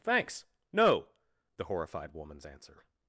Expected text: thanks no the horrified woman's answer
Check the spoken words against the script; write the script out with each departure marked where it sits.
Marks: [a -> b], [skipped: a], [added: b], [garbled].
thanks no the horrified woman's answer